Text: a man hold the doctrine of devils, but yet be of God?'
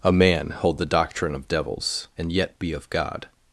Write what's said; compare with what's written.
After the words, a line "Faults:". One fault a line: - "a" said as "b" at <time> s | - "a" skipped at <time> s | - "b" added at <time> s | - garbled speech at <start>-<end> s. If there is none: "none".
a man hold the doctrine of devils, and yet be of God?'
Faults:
- "but" said as "and" at 2.2 s